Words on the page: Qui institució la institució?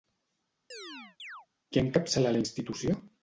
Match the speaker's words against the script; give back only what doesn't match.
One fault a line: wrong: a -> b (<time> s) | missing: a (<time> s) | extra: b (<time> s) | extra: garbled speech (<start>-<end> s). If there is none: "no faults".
wrong: institució -> encapçala (1.8 s)